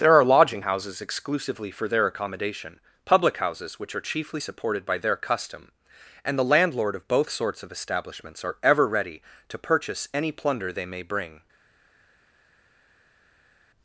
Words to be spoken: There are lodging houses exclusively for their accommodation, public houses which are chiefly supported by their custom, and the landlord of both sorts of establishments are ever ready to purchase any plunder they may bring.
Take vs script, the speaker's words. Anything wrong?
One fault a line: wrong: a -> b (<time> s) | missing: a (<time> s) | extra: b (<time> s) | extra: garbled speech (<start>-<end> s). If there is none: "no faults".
no faults